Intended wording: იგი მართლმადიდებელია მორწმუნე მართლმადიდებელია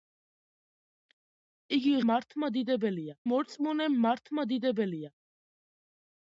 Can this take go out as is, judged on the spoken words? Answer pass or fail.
pass